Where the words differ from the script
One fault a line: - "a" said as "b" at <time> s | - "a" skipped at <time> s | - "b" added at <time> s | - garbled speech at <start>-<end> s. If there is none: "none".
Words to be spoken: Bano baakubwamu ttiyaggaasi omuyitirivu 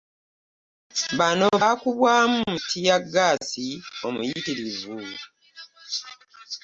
none